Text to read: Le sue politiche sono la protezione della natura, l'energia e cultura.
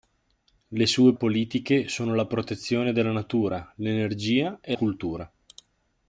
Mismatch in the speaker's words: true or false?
false